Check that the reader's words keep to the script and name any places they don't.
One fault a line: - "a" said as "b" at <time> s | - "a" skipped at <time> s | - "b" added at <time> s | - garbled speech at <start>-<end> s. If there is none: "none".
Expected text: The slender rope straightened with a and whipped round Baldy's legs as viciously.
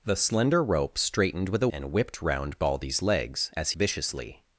none